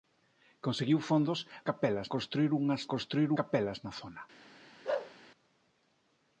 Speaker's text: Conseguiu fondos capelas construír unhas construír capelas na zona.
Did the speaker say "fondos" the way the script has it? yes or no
yes